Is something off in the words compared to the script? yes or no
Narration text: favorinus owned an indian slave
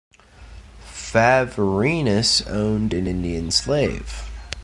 no